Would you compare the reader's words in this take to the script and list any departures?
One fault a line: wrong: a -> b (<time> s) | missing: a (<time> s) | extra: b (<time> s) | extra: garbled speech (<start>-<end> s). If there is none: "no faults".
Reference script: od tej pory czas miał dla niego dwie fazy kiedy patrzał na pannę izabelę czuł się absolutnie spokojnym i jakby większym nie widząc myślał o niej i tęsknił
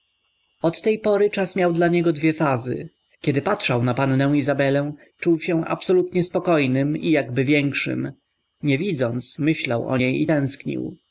no faults